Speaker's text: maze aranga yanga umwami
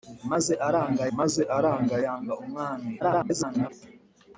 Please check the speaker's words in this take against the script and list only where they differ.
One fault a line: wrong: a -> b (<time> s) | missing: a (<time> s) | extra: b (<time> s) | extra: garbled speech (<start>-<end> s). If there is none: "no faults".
extra: maze aranga (1.2 s)
extra: garbled speech (3.0-3.7 s)